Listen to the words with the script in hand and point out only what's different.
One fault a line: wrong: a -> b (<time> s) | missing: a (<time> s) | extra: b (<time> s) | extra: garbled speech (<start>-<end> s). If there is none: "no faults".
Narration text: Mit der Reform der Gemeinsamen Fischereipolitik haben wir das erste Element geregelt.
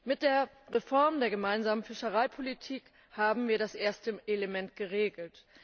no faults